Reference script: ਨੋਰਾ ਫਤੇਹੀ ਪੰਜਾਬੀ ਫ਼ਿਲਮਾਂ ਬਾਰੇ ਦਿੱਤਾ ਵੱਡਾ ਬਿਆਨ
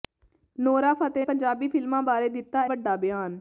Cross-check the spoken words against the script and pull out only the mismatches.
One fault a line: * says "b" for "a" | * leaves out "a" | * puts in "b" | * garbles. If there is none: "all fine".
all fine